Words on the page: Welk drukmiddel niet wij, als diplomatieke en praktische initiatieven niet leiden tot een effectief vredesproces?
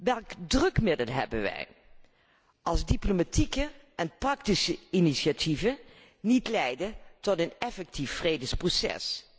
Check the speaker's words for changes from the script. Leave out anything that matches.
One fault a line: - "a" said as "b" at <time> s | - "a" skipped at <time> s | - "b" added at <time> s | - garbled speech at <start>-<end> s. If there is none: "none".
- "niet" said as "hebben" at 1.1 s